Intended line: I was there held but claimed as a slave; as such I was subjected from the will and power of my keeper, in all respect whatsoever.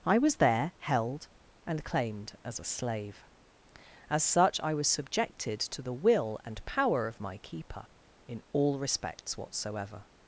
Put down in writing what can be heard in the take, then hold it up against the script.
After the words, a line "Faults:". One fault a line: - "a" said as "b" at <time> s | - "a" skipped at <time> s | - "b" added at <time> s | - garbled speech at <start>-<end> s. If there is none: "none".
I was there held and claimed as a slave; as such I was subjected to the will and power of my keeper, in all respects whatsoever.
Faults:
- "but" said as "and" at 1.7 s
- "from" said as "to" at 5.6 s
- "respect" said as "respects" at 8.8 s